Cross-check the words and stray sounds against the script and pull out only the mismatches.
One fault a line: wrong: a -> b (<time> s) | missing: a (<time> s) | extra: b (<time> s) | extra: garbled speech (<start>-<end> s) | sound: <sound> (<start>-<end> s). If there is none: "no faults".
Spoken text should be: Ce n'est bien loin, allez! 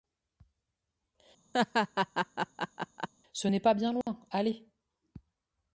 sound: laugh (1.5-3.1 s)
extra: pas (3.6 s)
sound: dropout (4.0-4.1 s)